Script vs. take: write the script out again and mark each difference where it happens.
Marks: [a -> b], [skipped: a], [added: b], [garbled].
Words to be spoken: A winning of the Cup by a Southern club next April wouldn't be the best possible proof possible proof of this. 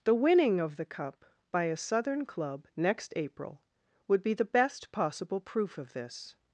[A -> The] winning of the Cup by a Southern club next April [wouldn't -> would] be the best possible proof [skipped: possible proof] of this.